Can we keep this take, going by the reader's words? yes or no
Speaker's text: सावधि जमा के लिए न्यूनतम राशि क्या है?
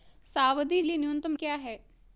no